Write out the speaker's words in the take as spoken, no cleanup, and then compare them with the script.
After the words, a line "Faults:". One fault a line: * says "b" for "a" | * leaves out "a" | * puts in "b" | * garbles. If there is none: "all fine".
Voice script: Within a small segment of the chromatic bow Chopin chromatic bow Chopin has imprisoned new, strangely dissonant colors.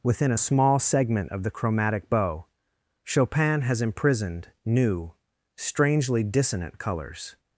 Within a small segment of the chromatic bow Chopin has imprisoned new, strangely dissonant colors.
Faults:
* leaves out "chromatic bow Chopin"